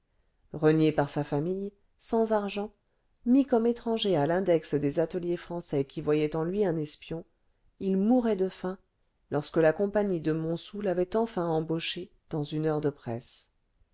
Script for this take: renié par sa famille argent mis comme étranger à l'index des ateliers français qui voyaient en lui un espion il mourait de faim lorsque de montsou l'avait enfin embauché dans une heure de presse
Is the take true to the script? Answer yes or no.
no